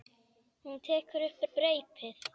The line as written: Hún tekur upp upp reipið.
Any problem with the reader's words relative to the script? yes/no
no